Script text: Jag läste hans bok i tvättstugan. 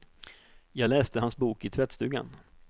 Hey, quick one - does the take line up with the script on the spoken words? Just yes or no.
yes